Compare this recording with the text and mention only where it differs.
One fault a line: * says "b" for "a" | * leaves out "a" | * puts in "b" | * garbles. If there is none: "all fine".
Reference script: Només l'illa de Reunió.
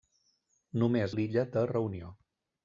all fine